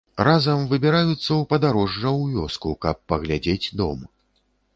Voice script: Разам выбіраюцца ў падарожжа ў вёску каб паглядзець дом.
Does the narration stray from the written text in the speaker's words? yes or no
no